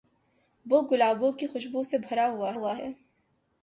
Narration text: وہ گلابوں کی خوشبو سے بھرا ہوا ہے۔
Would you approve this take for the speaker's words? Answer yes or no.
no